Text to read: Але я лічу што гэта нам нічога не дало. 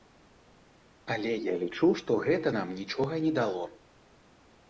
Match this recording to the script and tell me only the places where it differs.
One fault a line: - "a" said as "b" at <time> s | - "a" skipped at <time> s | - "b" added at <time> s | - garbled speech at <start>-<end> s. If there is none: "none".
none